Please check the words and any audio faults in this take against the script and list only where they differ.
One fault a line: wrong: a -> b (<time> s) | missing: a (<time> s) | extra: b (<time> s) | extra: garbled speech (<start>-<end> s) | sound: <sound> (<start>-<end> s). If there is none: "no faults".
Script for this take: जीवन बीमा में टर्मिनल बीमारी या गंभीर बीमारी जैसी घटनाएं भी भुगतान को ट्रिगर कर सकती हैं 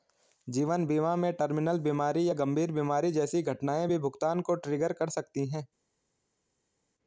no faults